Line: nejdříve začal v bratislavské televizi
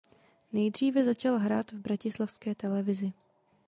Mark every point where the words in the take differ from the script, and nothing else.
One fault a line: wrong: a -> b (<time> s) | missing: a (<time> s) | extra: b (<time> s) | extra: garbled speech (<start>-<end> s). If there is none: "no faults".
extra: hrát (1.4 s)